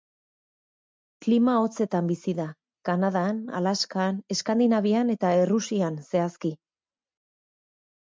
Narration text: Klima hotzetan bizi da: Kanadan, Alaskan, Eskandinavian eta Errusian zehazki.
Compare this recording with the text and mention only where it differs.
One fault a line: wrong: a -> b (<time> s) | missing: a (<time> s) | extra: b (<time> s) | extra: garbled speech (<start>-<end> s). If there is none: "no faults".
no faults